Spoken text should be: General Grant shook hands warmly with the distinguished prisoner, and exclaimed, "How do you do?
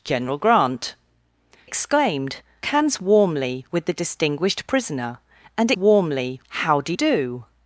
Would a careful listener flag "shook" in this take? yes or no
yes